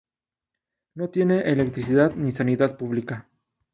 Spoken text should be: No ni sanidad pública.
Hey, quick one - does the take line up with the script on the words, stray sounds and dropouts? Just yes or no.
no